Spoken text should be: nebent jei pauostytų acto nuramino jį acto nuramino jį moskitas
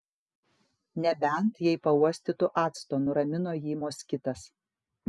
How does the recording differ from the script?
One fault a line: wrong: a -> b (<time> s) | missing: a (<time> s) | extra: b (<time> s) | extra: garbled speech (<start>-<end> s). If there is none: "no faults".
missing: acto nuramino jį (3.8 s)